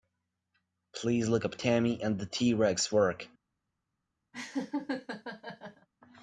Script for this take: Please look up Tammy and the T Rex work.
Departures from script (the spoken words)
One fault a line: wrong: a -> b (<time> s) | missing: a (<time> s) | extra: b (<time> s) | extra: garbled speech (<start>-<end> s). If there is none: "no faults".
no faults